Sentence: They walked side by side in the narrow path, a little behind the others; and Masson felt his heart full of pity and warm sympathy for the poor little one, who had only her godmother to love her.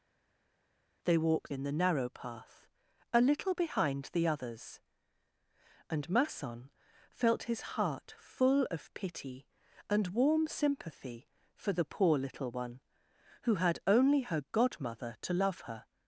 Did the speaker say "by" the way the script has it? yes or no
no